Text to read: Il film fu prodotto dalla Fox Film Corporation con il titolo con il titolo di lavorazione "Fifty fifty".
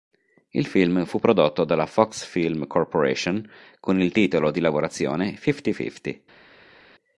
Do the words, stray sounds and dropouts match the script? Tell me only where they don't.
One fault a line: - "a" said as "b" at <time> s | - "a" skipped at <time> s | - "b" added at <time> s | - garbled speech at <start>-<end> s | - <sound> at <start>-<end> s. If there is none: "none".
- "con il titolo" skipped at 4.5 s